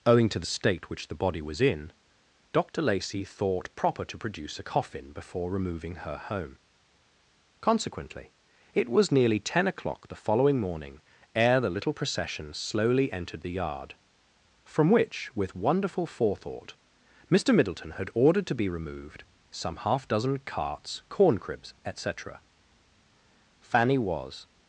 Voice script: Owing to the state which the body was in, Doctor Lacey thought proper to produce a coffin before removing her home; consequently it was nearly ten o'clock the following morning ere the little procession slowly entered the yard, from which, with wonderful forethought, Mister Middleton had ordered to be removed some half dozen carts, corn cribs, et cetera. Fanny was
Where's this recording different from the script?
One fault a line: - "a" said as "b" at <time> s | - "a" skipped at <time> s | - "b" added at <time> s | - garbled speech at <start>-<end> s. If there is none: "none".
none